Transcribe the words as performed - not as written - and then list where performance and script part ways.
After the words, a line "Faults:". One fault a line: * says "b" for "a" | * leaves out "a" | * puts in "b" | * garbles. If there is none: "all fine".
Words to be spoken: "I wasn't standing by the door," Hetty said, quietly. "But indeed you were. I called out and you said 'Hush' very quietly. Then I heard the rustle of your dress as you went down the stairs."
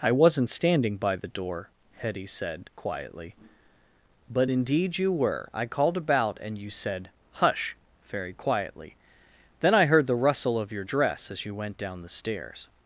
"I wasn't standing by the door," Hetty said, quietly. "But indeed you were. I called about and you said 'Hush' very quietly. Then I heard the rustle of your dress as you went down the stairs."
Faults:
* says "about" for "out"